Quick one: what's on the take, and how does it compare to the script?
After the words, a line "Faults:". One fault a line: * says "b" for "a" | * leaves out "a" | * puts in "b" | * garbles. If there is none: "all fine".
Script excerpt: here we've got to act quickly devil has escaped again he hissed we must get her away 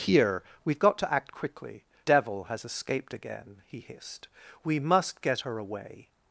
here we've got to act quickly devil has escaped again he hissed we must get her away
Faults:
all fine